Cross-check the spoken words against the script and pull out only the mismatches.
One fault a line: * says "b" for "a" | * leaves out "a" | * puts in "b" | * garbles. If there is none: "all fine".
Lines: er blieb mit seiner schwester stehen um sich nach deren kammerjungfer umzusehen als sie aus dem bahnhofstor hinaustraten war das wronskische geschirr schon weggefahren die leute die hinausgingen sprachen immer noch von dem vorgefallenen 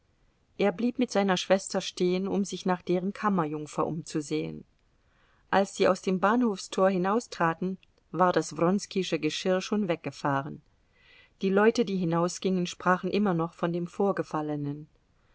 all fine